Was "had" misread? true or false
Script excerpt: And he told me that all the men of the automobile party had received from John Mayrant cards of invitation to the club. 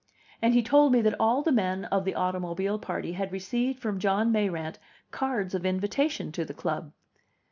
false